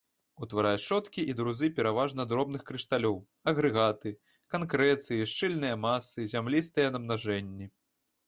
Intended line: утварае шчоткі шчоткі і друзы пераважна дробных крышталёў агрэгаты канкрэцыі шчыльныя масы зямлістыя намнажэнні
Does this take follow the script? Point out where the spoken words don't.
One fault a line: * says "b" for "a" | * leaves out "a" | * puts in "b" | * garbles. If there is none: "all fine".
* leaves out "шчоткі"